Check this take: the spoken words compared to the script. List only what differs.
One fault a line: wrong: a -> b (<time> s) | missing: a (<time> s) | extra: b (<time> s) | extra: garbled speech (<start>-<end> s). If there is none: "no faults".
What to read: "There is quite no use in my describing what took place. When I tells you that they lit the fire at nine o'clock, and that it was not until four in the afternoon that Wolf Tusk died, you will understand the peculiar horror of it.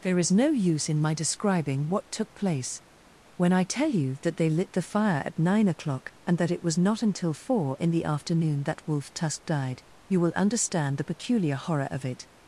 missing: quite (0.3 s)
wrong: tells -> tell (3.6 s)